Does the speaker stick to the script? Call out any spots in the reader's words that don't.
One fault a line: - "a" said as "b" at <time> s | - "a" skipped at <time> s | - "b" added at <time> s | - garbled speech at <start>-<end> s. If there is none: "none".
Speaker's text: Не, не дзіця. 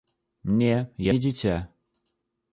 none